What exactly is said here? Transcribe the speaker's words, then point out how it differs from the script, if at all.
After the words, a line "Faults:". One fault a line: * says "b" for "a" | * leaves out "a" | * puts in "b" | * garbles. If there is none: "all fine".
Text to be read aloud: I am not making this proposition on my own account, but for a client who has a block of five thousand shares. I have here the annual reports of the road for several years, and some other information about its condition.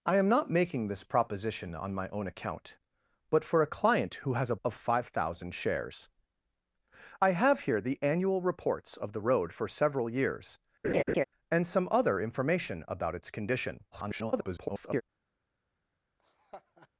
I am not making this proposition on my own account, but for a client who has a of five thousand shares. I have here the annual reports of the road for several years, and some other information about its condition. [garbled]
Faults:
* leaves out "block"
* garbles